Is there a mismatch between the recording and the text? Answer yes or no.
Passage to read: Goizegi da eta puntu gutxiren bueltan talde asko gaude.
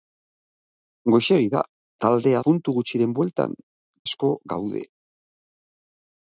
yes